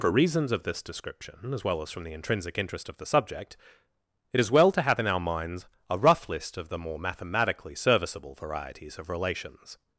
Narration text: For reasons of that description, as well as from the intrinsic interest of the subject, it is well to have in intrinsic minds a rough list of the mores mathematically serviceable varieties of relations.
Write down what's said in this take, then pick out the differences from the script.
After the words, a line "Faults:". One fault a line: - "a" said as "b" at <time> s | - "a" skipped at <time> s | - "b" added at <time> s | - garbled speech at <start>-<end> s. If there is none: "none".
For reasons of this description, as well as from the intrinsic interest of the subject, it is well to have in our minds a rough list of the more mathematically serviceable varieties of relations.
Faults:
- "that" said as "this" at 0.6 s
- "intrinsic" said as "our" at 5.1 s
- "mores" said as "more" at 6.8 s